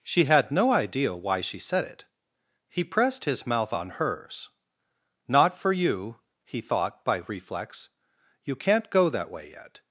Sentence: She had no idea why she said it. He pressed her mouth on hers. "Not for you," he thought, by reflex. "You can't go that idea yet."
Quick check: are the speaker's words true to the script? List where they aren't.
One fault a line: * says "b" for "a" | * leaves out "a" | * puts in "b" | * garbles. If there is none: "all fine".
* says "his" for "her"
* says "way" for "idea"